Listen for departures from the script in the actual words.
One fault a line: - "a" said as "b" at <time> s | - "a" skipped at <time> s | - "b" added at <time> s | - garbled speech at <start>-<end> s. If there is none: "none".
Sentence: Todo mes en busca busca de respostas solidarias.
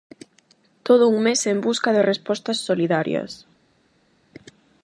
- "un" added at 1.1 s
- "busca" skipped at 1.9 s